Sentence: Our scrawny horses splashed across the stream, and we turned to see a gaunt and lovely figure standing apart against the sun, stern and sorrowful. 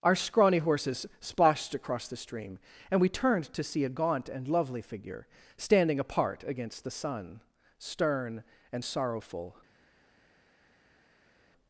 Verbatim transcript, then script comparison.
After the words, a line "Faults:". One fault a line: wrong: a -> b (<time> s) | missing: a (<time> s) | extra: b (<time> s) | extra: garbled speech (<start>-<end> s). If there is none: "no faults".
Our scrawny horses splashed across the stream, and we turned to see a gaunt and lovely figure standing apart against the sun, stern and sorrowful.
Faults:
no faults